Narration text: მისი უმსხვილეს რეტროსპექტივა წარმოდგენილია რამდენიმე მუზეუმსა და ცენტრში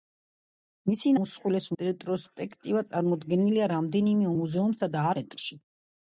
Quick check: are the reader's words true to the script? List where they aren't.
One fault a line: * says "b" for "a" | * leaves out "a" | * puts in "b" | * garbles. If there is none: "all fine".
all fine